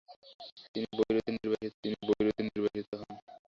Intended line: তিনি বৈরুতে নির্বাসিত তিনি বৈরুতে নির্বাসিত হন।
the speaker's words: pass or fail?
pass